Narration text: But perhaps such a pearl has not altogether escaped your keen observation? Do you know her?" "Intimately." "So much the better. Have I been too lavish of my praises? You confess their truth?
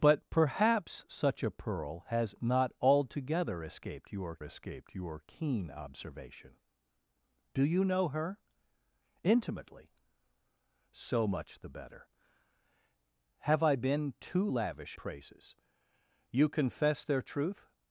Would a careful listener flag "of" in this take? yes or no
yes